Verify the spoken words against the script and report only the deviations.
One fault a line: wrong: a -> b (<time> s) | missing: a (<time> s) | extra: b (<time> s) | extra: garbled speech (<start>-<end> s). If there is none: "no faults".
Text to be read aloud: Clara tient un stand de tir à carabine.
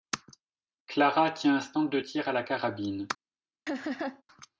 extra: la (2.3 s)